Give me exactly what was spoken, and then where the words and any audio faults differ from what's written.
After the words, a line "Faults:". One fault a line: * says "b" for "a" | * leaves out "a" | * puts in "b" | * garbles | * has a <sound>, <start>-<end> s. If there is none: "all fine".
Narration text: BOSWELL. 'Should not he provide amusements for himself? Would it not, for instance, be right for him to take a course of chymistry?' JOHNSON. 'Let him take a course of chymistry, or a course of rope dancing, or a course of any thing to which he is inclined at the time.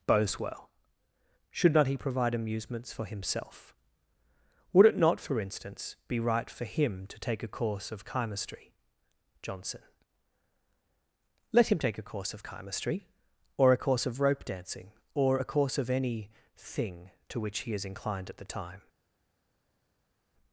BOSWELL. 'Should not he provide amusements for himself? Would it not, for instance, be right for him to take a course of chymistry?' JOHNSON. 'Let him take a course of chymistry, or a course of rope dancing, or a course of any thing to which he is inclined at the time.
Faults:
all fine